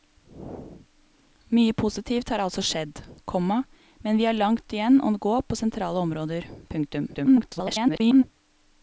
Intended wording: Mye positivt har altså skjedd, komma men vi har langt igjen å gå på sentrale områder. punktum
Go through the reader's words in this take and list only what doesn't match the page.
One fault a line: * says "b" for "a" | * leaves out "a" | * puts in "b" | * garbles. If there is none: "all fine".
* garbles